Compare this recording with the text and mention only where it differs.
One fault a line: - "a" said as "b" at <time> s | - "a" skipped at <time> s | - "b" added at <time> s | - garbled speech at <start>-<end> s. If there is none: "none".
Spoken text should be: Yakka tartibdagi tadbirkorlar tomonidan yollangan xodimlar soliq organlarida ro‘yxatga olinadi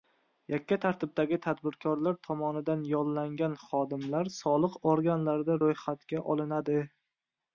none